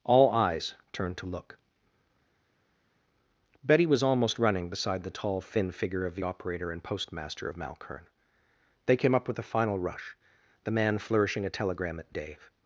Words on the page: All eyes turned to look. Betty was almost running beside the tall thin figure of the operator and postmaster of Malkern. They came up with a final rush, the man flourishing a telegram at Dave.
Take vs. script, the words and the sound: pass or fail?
pass